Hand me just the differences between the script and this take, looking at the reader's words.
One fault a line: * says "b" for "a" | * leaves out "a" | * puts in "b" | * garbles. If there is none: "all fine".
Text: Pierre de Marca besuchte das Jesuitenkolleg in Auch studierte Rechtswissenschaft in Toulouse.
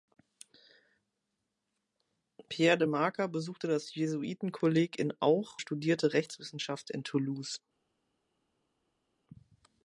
all fine